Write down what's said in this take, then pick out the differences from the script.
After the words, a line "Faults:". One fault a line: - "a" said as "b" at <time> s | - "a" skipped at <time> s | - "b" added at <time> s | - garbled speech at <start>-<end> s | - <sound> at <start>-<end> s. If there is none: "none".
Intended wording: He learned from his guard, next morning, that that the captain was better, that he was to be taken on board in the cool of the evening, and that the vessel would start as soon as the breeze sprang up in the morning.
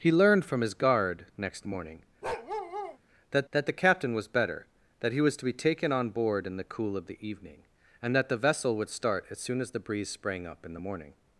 He learned from his guard, next morning, that that the captain was better, that he was to be taken on board in the cool of the evening, and that the vessel would start as soon as the breeze sprang up in the morning.
Faults:
- bark at 2.2-3.0 s